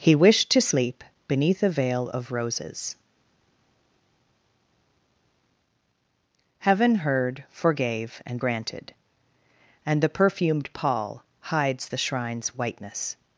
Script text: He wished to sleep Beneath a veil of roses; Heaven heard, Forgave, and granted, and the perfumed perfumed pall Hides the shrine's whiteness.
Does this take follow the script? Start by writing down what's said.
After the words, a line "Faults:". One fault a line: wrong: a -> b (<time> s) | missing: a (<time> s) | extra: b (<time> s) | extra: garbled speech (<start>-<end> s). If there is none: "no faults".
He wished to sleep Beneath a veil of roses; Heaven heard, Forgave, and granted, and the perfumed pall Hides the shrine's whiteness.
Faults:
missing: perfumed (10.7 s)